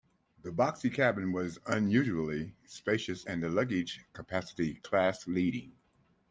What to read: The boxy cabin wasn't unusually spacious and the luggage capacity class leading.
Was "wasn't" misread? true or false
true